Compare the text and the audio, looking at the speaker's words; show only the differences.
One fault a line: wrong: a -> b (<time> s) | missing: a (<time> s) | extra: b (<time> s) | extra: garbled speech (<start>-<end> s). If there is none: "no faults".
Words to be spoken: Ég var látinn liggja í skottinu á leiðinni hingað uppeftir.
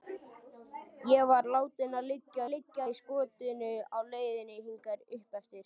extra: liggja (2.5 s)